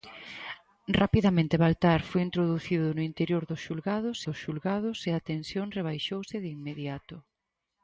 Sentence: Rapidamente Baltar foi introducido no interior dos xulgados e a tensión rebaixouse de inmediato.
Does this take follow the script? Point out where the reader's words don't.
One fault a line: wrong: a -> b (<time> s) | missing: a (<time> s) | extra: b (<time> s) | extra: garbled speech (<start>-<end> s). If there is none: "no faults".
extra: dos xulgados (4.3 s)